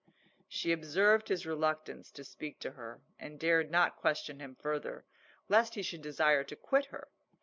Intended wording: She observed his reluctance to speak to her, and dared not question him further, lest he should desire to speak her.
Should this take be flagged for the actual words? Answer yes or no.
yes